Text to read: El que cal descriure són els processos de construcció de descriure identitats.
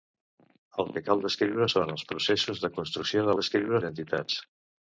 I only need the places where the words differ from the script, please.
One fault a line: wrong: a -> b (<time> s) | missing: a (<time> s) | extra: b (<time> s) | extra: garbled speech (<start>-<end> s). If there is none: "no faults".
no faults